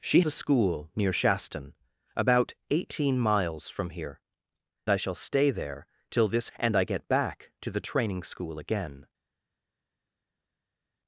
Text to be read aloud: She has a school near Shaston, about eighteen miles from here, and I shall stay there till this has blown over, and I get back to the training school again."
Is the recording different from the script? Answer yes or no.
yes